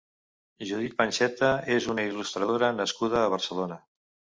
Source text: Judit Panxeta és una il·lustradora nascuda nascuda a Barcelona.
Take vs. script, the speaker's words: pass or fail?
fail